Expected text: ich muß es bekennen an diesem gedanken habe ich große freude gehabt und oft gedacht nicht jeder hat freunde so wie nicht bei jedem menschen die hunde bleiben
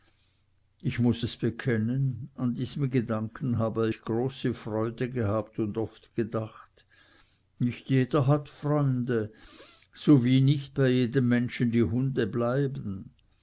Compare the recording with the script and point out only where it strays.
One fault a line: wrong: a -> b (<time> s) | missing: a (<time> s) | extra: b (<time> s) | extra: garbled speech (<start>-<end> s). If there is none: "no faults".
no faults